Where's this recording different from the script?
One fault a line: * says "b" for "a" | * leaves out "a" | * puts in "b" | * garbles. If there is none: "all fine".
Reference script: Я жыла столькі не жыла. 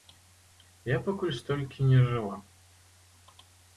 * says "пакуль" for "жыла"